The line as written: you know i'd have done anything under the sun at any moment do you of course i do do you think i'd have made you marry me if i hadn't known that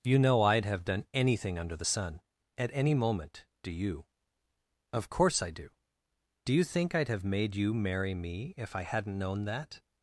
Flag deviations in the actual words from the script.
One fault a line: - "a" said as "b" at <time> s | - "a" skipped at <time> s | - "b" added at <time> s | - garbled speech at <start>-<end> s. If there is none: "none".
none